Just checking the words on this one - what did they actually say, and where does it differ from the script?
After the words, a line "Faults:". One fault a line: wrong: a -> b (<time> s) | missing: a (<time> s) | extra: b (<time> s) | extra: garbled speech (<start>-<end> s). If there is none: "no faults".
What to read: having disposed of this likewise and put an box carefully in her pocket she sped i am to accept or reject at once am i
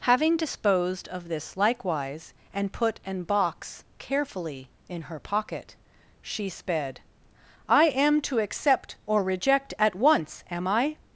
having disposed of this likewise and put an box carefully in her pocket she sped i am to accept or reject at once am i
Faults:
no faults